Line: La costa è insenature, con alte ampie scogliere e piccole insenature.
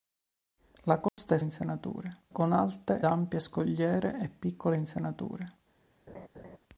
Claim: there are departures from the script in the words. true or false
false